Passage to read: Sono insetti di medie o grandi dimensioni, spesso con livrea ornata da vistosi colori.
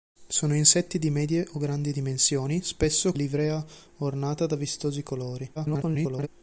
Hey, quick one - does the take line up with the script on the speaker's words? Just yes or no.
no